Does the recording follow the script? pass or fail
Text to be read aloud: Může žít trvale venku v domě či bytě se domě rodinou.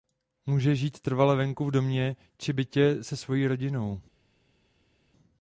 fail